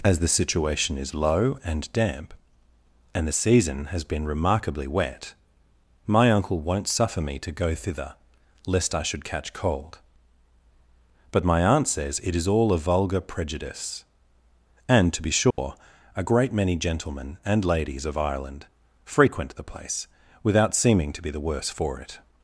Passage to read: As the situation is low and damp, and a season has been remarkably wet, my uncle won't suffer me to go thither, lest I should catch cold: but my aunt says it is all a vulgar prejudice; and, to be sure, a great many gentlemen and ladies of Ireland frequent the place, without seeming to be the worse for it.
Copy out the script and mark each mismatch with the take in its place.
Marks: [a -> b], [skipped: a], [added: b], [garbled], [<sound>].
As the situation is low and damp, and [a -> the] season has been remarkably wet, my uncle won't suffer me to go thither, lest I should catch cold: but my aunt says it is all a vulgar prejudice; and, to be sure, [dropout] a great many gentlemen and ladies of Ireland frequent the place, without seeming to be the worse for it.